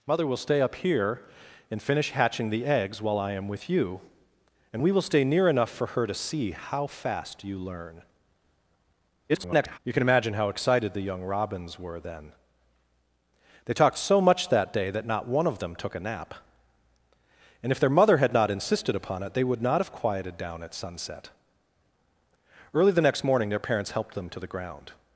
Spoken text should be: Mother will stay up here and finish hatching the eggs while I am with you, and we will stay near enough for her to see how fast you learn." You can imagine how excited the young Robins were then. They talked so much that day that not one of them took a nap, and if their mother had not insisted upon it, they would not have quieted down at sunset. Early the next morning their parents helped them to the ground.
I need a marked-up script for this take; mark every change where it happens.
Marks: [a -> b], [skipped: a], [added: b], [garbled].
Mother will stay up here and finish hatching the eggs while I am with you, and we will stay near enough for her to see how fast you learn." [garbled] You can imagine how excited the young Robins were then. They talked so much that day that not one of them took a nap, and if their mother had not insisted upon it, they would not have quieted down at sunset. Early the next morning their parents helped them to the ground.